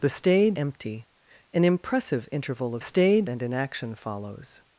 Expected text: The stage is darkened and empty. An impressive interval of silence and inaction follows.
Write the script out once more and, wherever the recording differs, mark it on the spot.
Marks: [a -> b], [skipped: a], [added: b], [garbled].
The stage [skipped: is darkened and] empty. An impressive interval of [silence -> stage] and inaction follows.